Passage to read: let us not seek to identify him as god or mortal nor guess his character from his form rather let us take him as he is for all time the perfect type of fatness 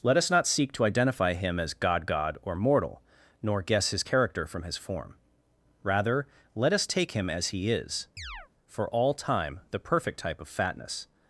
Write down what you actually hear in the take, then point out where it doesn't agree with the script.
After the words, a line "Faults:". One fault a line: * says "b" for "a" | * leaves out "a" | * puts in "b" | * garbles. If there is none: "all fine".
let us not seek to identify him as god god or mortal nor guess his character from his form rather let us take him as he is for all time the perfect type of fatness
Faults:
* puts in "god"